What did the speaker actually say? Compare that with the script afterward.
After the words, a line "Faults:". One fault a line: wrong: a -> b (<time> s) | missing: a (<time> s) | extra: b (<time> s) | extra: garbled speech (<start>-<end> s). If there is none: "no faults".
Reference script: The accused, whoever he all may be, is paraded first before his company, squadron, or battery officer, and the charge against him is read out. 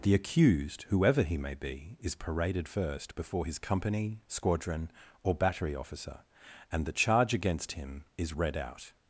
The accused, whoever he may be, is paraded first before his company, squadron, or battery officer, and the charge against him is read out.
Faults:
missing: all (1.4 s)